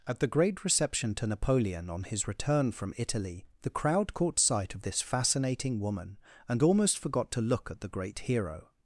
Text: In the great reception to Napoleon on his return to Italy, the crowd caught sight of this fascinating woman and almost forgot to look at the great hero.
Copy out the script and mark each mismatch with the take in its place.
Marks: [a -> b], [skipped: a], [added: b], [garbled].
[In -> At] the great reception to Napoleon on his return [to -> from] Italy, the crowd caught sight of this fascinating woman and almost forgot to look at the great hero.